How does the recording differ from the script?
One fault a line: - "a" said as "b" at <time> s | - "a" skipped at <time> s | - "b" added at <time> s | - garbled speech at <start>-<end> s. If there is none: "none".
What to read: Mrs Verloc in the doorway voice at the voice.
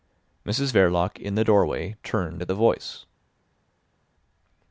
- "voice" said as "turned" at 2.0 s